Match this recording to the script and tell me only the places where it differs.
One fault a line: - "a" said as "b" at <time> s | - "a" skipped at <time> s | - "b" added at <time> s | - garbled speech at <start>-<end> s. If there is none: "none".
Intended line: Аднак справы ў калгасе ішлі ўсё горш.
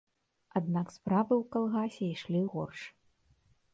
- "ўсё" skipped at 2.4 s